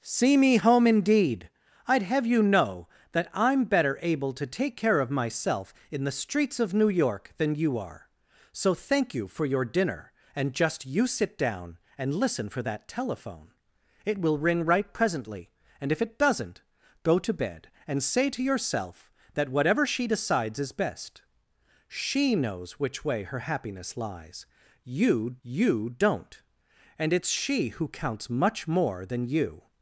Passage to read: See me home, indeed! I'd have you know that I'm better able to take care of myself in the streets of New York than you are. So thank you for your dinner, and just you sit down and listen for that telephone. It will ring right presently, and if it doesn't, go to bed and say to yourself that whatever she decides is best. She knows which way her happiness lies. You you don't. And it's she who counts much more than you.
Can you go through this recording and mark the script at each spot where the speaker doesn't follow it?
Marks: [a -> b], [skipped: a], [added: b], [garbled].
See me home, indeed! I'd have you know that I'm better able to take care of myself in the streets of New York than you are. So thank you for your dinner, and just you sit down and listen for that telephone. It will ring right presently, and if it doesn't, go to bed and say to yourself that whatever she decides is best. She knows which way her happiness lies. You you don't. And it's she who counts much more than you.